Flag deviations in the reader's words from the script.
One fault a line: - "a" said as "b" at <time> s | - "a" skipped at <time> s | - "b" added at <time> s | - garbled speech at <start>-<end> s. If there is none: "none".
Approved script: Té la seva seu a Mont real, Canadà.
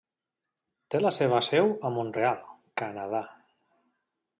none